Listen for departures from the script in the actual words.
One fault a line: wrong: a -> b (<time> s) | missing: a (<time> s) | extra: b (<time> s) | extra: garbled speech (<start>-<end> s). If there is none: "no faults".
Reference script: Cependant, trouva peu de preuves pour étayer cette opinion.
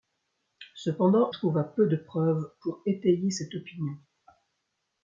no faults